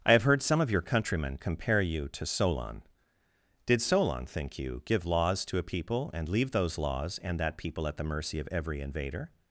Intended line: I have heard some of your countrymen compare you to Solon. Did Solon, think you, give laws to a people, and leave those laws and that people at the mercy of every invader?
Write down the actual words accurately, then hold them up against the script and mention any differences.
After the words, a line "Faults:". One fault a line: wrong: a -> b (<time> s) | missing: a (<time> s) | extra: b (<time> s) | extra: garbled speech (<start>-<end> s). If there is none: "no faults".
I have heard some of your countrymen compare you to Solon. Did Solon, think you, give laws to a people, and leave those laws and that people at the mercy of every invader?
Faults:
no faults